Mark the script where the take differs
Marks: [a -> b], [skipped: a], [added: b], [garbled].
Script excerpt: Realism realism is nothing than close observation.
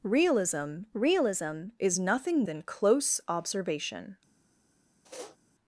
Realism realism is nothing than close observation.